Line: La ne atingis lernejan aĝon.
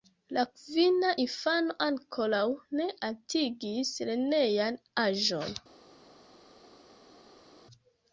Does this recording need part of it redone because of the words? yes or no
yes